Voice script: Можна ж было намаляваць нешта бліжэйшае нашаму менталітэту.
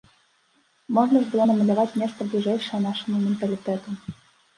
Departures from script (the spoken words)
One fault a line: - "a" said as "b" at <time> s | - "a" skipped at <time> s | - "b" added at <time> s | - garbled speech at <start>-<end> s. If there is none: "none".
none